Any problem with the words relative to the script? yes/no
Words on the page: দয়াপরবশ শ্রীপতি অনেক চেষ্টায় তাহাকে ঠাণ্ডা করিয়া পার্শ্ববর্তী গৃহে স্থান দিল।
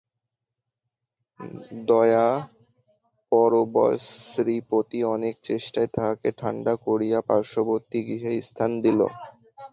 no